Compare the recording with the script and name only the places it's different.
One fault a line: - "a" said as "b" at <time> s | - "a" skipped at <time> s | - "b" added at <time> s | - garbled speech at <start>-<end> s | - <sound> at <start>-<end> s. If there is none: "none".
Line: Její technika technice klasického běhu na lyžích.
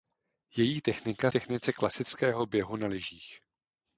none